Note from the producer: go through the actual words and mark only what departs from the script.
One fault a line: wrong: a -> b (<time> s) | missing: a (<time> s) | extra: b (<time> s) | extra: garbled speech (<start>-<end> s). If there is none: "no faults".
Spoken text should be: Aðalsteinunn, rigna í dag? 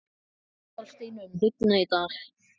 no faults